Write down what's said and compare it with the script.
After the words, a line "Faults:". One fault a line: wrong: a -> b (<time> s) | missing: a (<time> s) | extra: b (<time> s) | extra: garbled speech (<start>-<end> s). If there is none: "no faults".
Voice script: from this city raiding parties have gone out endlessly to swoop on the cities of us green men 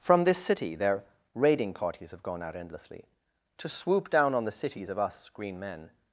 from this city their raiding parties have gone out endlessly to swoop down on the cities of us green men
Faults:
extra: their (0.8 s)
extra: down (4.1 s)